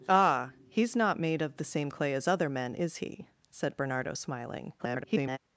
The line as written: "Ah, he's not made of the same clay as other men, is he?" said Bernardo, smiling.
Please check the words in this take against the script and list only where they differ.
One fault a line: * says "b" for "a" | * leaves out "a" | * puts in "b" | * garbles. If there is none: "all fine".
* garbles